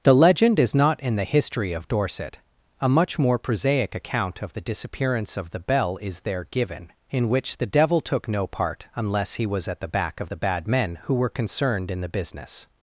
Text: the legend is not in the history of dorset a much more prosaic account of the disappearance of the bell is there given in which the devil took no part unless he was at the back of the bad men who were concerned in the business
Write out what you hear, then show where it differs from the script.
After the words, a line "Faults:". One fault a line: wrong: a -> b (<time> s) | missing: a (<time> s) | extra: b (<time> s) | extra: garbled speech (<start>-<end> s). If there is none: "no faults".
the legend is not in the history of dorset a much more prosaic account of the disappearance of the bell is there given in which the devil took no part unless he was at the back of the bad men who were concerned in the business
Faults:
no faults